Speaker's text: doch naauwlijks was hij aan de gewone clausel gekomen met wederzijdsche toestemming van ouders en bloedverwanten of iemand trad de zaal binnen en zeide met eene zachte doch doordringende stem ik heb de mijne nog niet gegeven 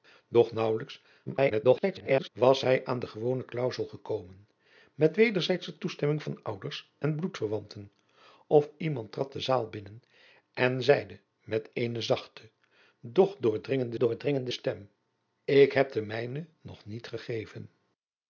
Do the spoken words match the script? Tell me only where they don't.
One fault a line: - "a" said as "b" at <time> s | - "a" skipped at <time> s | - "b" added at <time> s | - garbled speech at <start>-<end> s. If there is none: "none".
- garbled speech at 1.3-2.3 s
- "doordringende" added at 14.0 s